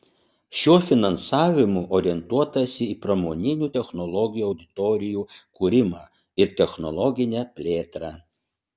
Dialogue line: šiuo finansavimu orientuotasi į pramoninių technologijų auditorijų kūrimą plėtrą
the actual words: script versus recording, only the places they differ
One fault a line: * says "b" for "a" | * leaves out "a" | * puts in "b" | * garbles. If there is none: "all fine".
* puts in "ir technologinę"